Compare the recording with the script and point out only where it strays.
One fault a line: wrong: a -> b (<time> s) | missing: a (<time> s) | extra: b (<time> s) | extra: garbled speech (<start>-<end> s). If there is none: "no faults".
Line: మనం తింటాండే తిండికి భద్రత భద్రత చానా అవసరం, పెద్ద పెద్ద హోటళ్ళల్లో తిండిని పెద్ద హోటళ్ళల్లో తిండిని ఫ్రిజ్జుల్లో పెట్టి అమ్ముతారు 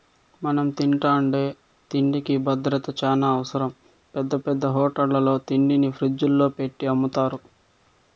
missing: భద్రత (2.9 s)
missing: పెద్ద హోటళ్ళల్లో తిండిని (5.9 s)